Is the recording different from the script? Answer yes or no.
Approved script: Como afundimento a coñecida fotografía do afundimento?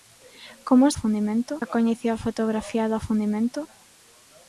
no